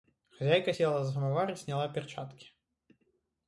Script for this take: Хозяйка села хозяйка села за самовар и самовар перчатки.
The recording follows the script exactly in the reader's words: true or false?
false